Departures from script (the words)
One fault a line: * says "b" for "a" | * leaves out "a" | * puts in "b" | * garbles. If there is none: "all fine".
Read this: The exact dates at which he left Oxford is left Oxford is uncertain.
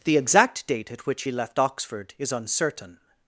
* says "date" for "dates"
* leaves out "left Oxford is"